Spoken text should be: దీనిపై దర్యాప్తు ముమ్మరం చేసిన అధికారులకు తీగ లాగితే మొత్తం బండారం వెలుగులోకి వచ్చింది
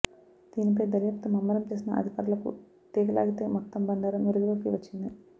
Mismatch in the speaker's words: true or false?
false